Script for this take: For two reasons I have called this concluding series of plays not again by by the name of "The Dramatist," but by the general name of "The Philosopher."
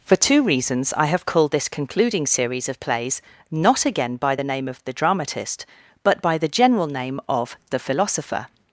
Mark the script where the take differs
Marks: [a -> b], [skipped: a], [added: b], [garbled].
For two reasons I have called this concluding series of plays not again by [skipped: by] the name of "The Dramatist," but by the general name of "The Philosopher."